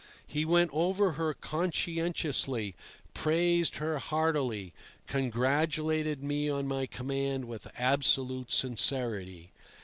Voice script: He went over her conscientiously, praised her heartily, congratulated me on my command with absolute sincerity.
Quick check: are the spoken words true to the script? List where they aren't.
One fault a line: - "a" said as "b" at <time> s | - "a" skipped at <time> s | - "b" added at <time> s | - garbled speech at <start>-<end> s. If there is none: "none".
none